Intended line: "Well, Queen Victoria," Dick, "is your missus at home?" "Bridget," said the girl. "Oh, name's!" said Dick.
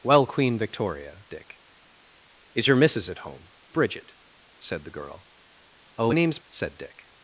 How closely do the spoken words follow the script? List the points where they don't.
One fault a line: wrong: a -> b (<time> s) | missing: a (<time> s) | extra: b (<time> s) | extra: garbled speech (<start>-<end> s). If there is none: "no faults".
no faults